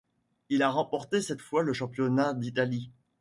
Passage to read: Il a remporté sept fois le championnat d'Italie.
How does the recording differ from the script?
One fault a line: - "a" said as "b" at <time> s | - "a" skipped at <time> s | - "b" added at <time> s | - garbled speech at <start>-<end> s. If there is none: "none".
none